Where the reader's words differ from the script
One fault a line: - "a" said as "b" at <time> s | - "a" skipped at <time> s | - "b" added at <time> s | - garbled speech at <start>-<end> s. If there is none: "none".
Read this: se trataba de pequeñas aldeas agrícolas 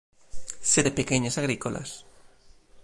- "trataba" skipped at 0.8 s
- "aldeas" skipped at 1.4 s